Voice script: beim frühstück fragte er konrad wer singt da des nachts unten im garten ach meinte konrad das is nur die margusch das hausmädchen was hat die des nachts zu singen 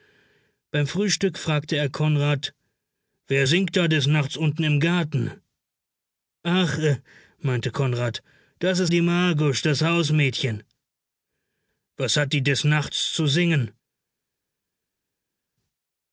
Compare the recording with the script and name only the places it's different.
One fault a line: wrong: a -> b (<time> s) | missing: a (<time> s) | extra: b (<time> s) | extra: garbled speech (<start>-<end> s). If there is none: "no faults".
missing: nur (8.9 s)